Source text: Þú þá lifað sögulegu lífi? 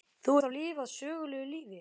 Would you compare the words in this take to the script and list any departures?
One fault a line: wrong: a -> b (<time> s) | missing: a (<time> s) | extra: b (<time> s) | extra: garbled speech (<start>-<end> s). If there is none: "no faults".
no faults